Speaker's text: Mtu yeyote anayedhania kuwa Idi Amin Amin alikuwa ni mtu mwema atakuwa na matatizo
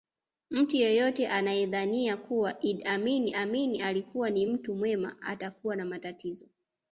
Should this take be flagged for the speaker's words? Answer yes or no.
no